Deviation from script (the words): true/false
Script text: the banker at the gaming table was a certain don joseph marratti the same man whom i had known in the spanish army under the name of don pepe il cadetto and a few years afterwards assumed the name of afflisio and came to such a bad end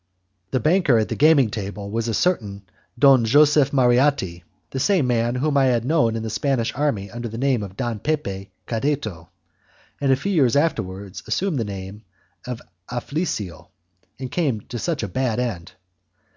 true